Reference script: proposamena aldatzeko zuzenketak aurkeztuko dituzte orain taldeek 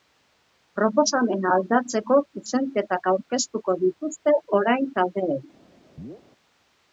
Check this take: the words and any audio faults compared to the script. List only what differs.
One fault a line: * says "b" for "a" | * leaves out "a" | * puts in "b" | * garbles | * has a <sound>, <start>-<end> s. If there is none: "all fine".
* has a chirp, 6.0-6.2 s